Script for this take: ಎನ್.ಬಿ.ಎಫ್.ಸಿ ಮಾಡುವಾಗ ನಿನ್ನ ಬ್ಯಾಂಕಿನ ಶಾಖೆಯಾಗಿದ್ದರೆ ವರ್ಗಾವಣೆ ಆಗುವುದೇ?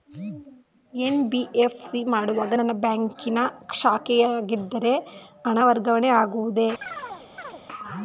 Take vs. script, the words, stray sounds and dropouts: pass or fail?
fail